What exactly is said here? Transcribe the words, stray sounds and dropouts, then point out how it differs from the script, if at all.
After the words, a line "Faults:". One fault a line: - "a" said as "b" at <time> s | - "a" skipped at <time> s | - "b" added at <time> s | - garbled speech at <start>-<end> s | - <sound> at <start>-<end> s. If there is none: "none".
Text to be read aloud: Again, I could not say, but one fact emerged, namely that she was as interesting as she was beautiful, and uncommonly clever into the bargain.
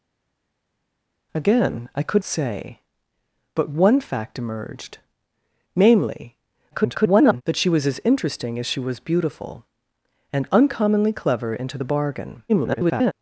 Again, I could say, but one fact emerged, namely [garbled] that she was as interesting as she was beautiful, and uncommonly clever into the bargain. [garbled]
Faults:
- "not" skipped at 2.2 s
- garbled speech at 6.7-7.4 s
- garbled speech at 12.5-13.1 s